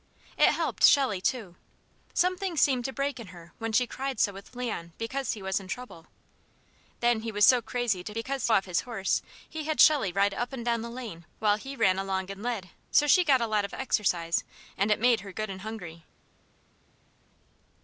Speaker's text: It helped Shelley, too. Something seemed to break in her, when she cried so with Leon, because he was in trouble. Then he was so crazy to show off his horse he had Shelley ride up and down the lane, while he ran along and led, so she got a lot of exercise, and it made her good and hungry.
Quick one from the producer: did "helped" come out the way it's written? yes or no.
yes